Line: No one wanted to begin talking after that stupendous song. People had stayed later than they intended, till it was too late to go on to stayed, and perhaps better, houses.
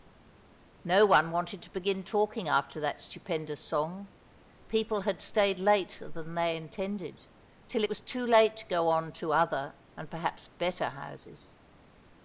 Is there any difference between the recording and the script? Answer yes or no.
yes